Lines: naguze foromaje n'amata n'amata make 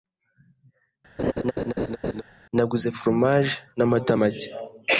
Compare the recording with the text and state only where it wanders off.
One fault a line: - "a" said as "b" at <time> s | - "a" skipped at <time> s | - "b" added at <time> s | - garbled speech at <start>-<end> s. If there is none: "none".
- "n'amata" skipped at 4.1 s